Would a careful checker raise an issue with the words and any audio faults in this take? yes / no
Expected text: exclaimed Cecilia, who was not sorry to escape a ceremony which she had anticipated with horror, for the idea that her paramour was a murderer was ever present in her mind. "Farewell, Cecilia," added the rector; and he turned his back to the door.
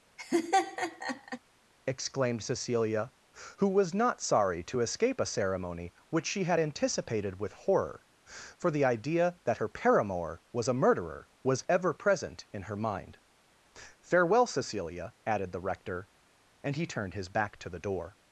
yes